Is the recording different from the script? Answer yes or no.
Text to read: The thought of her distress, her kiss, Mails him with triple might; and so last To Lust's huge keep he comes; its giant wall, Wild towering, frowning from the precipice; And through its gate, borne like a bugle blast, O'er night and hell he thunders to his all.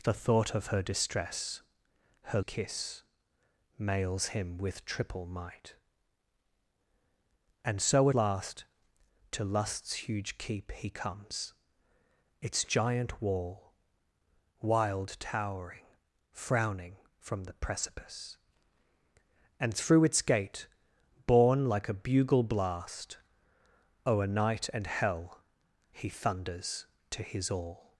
no